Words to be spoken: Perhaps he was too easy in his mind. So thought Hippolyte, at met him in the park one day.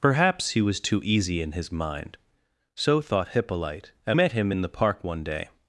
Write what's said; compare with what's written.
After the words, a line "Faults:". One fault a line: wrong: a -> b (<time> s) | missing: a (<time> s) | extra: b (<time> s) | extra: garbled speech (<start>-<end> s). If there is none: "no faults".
Perhaps he was too easy in his mind. So thought Hippolyte, at met him in the park one day.
Faults:
no faults